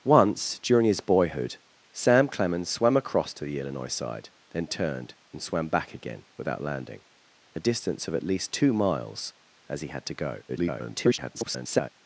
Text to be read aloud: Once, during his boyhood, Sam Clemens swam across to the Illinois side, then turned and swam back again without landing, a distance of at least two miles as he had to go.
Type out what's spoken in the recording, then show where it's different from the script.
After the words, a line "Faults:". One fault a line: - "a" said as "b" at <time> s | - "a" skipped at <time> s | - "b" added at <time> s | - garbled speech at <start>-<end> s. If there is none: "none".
Once, during his boyhood, Sam Clemens swam across to the Illinois side, then turned and swam back again without landing, a distance of at least two miles as he had to go. [garbled]
Faults:
- garbled speech at 10.5-11.9 s